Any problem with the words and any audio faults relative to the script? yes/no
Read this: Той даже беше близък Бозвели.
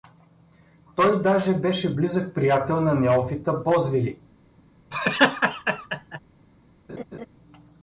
yes